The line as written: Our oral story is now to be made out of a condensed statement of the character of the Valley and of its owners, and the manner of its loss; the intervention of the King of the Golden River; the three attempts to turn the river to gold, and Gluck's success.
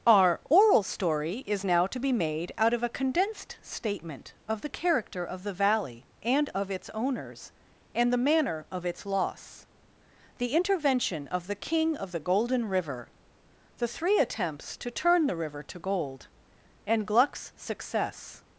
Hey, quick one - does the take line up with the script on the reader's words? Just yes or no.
yes